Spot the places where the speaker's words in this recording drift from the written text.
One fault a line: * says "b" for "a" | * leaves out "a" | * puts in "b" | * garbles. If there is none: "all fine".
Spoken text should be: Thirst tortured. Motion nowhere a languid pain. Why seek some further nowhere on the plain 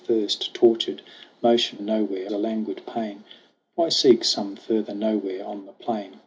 all fine